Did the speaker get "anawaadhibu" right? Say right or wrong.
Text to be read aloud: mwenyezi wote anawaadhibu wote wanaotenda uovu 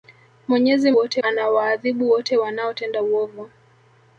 right